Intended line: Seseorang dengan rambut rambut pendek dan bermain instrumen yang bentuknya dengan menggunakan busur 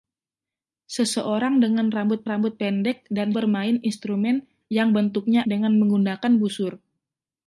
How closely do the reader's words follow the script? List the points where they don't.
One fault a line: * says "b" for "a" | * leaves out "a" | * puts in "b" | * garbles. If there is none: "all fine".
all fine